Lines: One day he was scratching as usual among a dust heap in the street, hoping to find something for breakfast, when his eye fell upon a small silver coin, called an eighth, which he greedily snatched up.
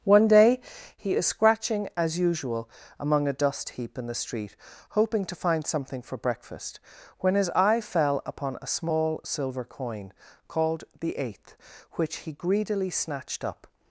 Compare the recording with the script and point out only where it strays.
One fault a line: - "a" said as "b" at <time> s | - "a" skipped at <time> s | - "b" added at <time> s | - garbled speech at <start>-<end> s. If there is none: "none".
- "was" said as "is" at 1.1 s
- "an" said as "the" at 11.0 s